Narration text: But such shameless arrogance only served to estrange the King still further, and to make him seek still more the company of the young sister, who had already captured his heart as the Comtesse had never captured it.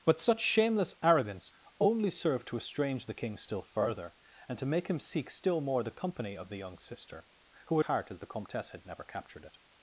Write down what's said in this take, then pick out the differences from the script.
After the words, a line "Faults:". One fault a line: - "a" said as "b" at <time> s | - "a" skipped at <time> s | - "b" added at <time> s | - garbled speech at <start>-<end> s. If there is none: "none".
But such shameless arrogance only served to estrange the King still further, and to make him seek still more the company of the young sister, who had heart as the Comtesse had never captured it.
Faults:
- "already captured his" skipped at 7.8 s